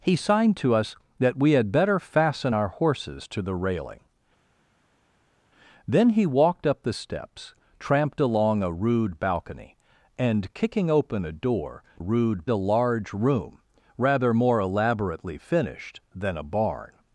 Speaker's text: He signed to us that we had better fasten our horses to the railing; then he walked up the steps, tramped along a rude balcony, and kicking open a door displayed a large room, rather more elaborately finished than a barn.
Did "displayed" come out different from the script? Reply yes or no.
yes